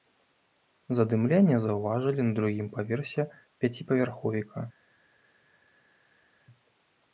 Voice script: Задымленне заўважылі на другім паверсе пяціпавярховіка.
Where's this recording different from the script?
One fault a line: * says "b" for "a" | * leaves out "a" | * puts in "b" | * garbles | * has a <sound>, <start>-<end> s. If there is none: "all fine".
all fine